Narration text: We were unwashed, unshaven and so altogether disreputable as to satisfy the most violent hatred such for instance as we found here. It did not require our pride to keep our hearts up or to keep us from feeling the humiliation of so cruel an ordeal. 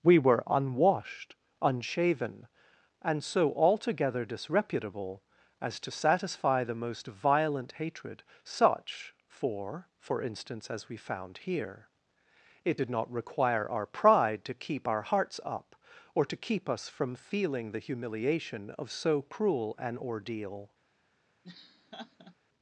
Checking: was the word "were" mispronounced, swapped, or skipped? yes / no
no